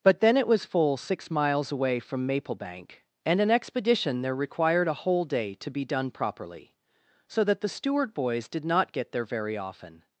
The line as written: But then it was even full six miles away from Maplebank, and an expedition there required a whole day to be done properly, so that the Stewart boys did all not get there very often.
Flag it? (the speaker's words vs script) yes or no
yes